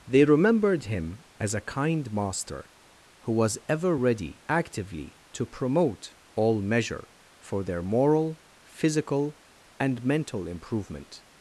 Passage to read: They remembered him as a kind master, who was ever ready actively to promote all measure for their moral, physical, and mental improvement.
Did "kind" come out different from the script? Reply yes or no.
no